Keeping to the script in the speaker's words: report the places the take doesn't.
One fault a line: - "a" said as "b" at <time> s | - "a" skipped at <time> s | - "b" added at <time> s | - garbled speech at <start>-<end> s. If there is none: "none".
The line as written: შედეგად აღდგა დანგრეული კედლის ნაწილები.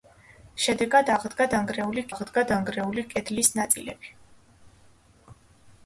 - "აღდგა დანგრეული" added at 2.1 s